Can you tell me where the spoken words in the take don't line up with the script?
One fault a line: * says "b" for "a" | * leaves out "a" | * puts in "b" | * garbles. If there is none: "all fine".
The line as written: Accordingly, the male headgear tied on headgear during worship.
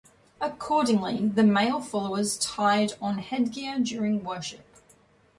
* says "followers" for "headgear"